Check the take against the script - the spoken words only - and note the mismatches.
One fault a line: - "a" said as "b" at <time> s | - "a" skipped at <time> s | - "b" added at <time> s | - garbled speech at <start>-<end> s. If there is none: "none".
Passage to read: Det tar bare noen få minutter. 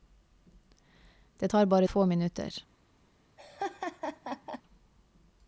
- "noen" skipped at 1.9 s